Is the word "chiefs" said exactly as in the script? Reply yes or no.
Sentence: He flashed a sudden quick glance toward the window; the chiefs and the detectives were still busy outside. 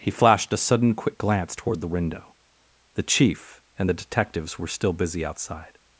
no